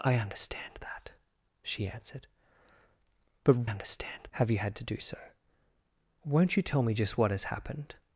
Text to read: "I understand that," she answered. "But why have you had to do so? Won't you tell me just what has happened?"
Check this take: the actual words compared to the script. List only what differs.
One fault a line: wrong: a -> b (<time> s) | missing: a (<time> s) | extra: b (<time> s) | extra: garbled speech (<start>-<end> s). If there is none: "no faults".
wrong: why -> understand (3.6 s)